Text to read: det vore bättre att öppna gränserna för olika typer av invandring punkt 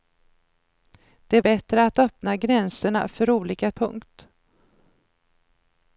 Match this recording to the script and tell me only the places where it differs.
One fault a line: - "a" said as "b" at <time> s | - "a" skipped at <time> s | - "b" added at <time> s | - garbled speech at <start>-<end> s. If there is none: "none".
- "vore" skipped at 1.4 s
- "typer av invandring" skipped at 3.7 s